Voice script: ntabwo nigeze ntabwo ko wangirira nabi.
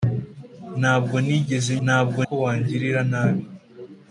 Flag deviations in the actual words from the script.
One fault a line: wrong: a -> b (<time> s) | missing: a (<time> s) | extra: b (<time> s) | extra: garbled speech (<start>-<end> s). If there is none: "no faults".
no faults